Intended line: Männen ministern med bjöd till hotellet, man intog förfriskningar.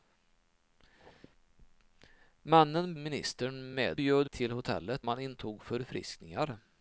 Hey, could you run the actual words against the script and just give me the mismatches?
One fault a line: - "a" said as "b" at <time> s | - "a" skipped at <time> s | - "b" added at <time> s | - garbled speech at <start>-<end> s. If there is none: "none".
none